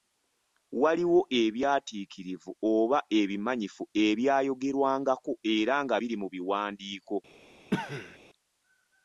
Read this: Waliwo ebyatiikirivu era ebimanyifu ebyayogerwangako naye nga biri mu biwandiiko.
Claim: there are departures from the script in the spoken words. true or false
true